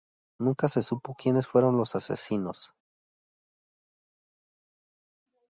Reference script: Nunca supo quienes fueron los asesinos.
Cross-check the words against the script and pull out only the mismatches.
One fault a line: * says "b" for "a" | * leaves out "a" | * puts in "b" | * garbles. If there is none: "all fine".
* puts in "se"